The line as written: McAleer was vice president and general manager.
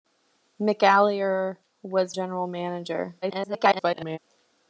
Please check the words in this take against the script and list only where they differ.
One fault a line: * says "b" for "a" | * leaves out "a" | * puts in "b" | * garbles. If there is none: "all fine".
* leaves out "vice president and"
* garbles